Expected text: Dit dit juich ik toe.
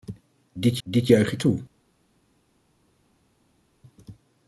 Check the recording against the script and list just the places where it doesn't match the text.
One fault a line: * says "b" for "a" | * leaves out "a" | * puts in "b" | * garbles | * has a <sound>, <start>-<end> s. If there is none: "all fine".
all fine